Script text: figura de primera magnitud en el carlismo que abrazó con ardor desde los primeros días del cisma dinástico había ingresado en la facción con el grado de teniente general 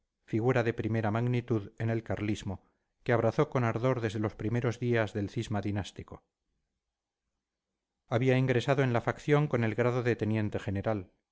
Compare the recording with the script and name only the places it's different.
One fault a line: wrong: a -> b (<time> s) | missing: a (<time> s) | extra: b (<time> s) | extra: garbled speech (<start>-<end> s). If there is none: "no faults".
no faults